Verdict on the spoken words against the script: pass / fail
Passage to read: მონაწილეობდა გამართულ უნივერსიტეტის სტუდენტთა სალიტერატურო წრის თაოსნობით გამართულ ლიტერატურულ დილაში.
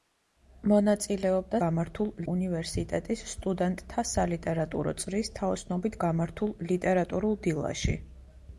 pass